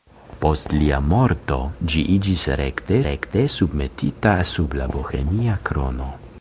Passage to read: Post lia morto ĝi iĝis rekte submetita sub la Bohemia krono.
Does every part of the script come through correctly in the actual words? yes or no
no